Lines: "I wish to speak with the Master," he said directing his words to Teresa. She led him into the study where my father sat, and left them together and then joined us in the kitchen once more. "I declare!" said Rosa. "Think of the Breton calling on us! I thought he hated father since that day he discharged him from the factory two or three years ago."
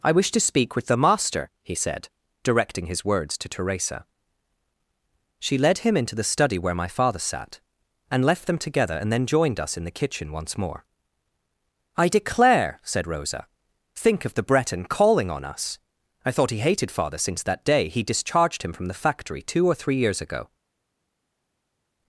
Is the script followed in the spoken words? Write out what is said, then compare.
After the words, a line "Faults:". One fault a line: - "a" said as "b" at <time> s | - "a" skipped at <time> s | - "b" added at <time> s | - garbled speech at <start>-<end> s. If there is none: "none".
"I wish to speak with the Master," he said directing his words to Teresa. She led him into the study where my father sat, and left them together and then joined us in the kitchen once more. "I declare!" said Rosa. "Think of the Breton calling on us! I thought he hated father since that day he discharged him from the factory two or three years ago."
Faults:
none